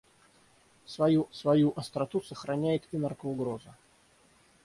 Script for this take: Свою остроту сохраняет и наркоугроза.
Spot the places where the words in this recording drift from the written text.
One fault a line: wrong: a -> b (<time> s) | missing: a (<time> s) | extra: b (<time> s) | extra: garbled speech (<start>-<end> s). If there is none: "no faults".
extra: свою (1.3 s)